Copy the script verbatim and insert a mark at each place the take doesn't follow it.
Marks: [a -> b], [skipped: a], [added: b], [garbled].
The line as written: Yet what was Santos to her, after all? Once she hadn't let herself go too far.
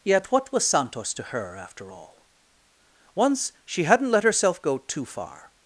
Yet what was Santos to her, after all? Once she hadn't let herself go too far.